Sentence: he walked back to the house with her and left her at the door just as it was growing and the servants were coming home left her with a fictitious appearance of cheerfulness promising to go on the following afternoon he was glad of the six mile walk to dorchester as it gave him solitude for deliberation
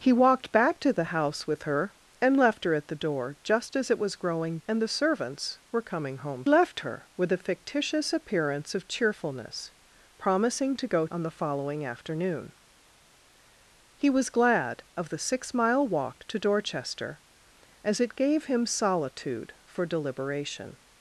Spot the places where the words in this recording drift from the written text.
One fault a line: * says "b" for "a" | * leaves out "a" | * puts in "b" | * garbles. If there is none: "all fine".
all fine